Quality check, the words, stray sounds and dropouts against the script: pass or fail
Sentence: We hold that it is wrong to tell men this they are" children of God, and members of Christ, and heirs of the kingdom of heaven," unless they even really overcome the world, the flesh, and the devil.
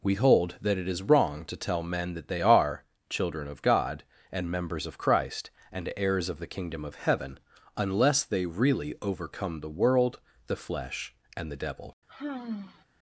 fail